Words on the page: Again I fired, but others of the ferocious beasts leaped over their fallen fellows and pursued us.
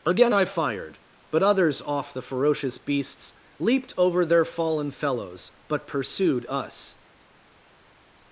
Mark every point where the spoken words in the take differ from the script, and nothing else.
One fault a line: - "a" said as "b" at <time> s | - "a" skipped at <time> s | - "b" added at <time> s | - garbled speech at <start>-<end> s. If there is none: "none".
- "of" said as "off" at 1.8 s
- "and" said as "but" at 5.7 s